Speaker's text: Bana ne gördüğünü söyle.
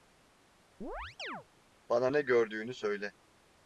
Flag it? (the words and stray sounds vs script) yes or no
yes